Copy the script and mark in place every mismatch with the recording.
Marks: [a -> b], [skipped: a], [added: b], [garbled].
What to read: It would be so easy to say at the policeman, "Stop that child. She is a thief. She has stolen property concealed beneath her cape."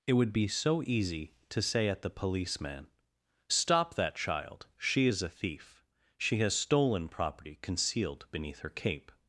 It would be so easy to say at the policeman, "Stop that child. She is a thief. She has stolen property concealed beneath her cape."